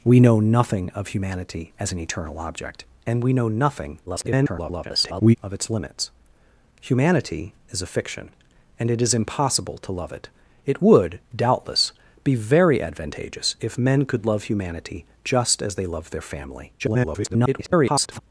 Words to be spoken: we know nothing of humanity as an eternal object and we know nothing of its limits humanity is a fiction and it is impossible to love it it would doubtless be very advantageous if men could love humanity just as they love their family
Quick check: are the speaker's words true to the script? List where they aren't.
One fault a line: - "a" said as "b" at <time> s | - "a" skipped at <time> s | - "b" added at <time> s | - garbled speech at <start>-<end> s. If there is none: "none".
- garbled speech at 4.1-5.4 s
- garbled speech at 16.8-18.2 s